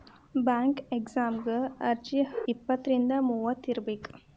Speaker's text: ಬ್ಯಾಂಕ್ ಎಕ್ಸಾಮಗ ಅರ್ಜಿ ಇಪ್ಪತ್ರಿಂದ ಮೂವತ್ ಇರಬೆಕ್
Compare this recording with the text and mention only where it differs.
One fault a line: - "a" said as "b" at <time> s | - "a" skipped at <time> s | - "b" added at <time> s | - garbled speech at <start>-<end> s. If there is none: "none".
none